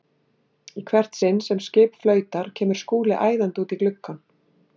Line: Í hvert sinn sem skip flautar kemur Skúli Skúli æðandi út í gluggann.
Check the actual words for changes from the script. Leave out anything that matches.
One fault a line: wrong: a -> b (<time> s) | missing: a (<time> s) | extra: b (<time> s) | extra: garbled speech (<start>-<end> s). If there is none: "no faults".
missing: Skúli (3.2 s)